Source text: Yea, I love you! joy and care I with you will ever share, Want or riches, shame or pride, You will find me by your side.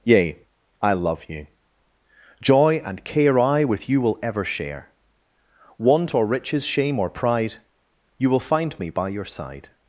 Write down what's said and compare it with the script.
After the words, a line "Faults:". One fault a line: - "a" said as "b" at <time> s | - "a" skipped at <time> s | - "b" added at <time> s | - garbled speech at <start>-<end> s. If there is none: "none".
Yea, I love you! joy and care I with you will ever share, Want or riches, shame or pride, You will find me by your side.
Faults:
none